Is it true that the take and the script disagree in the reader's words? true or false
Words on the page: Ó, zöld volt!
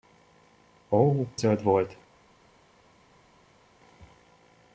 false